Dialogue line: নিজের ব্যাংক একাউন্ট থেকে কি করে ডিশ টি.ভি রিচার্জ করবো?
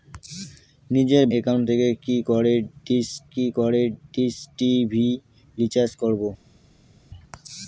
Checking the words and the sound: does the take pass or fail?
fail